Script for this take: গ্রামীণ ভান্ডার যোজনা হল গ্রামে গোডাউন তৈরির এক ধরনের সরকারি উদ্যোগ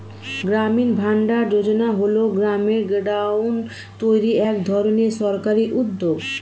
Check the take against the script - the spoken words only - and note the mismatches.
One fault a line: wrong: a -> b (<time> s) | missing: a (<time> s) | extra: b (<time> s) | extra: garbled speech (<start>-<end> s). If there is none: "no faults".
no faults